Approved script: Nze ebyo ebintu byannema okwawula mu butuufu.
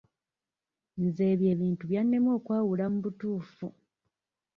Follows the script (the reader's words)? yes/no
yes